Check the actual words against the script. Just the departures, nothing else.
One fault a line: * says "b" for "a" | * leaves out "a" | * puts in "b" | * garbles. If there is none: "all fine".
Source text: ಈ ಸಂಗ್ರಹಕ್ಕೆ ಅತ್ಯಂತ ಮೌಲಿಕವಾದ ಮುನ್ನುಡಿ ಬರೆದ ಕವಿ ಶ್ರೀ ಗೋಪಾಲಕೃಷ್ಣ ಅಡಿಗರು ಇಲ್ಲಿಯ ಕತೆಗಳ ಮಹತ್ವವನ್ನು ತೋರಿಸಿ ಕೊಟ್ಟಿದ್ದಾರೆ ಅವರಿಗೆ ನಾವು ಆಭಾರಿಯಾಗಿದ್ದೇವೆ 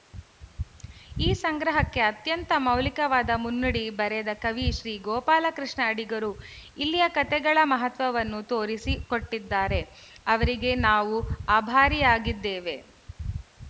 all fine